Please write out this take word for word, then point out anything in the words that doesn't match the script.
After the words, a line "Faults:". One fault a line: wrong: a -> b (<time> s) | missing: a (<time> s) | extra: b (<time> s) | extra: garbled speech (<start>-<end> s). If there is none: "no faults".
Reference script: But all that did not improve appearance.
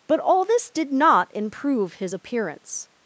But all this did not improve his appearance.
Faults:
wrong: that -> this (0.5 s)
extra: his (1.9 s)